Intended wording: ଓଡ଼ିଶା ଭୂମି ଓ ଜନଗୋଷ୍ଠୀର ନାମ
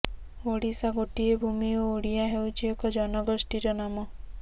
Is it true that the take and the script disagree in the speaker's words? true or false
true